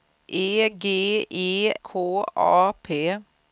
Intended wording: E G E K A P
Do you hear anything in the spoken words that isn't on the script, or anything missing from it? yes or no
no